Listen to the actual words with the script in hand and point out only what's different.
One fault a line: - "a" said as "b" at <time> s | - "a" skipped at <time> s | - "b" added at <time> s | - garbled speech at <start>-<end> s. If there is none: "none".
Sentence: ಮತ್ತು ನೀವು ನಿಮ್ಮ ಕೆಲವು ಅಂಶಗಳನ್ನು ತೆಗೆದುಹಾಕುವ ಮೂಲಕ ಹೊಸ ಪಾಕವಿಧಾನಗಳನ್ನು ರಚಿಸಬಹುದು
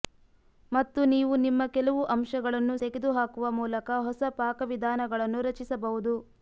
none